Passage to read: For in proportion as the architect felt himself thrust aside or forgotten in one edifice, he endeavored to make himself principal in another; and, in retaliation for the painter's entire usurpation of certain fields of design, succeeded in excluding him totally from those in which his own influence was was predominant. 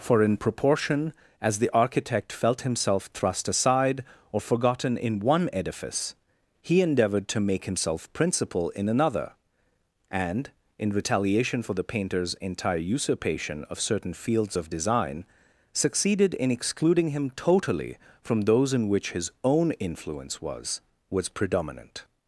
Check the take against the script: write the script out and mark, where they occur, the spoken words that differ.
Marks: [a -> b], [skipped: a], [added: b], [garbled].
For in proportion as the architect felt himself thrust aside or forgotten in one edifice, he endeavored to make himself principal in another; and, in retaliation for the painter's entire usurpation of certain fields of design, succeeded in excluding him totally from those in which his own influence was was predominant.